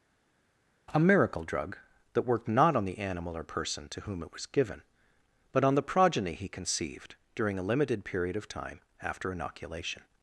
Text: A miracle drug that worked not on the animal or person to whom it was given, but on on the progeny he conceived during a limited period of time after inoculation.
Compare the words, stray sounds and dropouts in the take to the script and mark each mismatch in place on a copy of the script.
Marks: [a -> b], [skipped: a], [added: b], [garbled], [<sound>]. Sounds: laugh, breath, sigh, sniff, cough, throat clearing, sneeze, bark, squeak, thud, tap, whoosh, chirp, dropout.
A miracle drug that worked not on the animal or person to whom it was given, but on [skipped: on] the progeny he conceived during a limited period of time after inoculation.